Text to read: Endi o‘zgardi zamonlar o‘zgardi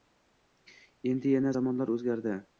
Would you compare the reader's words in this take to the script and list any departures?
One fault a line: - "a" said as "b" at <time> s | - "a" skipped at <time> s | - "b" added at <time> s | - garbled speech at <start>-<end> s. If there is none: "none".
- "o‘zgardi" said as "yana" at 1.4 s